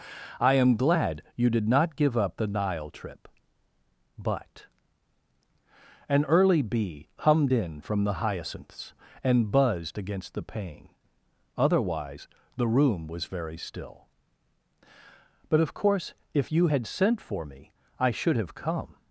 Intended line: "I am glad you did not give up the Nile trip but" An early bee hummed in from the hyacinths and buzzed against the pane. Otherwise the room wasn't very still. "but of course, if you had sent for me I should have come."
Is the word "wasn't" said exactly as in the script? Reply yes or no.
no